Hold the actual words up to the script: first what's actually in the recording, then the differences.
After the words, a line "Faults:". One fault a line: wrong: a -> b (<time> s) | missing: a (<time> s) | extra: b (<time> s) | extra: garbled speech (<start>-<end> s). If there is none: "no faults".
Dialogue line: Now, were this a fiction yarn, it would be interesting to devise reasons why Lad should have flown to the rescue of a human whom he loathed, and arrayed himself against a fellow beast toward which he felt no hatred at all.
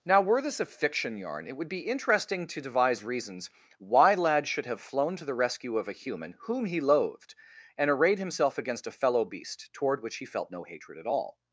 Now, were this a fiction yarn, it would be interesting to devise reasons why Lad should have flown to the rescue of a human whom he loathed, and arrayed himself against a fellow beast toward which he felt no hatred at all.
Faults:
no faults